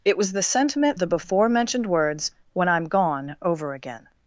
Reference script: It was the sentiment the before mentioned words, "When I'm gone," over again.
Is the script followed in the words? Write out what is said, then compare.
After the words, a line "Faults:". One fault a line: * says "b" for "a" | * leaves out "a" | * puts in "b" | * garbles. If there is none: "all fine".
It was the sentiment the before mentioned words, "When I'm gone," over again.
Faults:
all fine